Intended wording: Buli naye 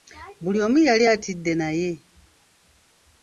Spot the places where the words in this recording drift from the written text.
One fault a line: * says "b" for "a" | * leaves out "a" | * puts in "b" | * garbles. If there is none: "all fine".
* puts in "omu yali atidde"